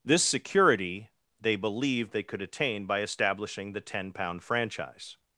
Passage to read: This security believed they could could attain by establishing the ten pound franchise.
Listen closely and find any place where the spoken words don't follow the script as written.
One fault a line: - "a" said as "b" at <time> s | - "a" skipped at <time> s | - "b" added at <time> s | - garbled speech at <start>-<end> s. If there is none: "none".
- "they" added at 1.4 s
- "could" skipped at 2.4 s